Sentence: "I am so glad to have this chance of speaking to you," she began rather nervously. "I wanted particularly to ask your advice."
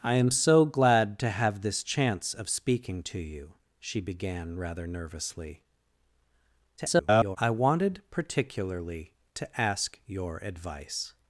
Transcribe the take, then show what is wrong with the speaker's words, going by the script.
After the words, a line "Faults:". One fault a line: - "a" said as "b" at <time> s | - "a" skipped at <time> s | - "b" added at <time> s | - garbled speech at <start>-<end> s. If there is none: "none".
"I am so glad to have this chance of speaking to you," she began rather nervously. [garbled] "I wanted particularly to ask your advice."
Faults:
- garbled speech at 6.8-7.4 s